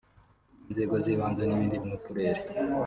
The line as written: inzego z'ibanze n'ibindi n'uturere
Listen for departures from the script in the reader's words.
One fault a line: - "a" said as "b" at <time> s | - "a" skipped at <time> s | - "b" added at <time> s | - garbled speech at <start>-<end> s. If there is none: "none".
none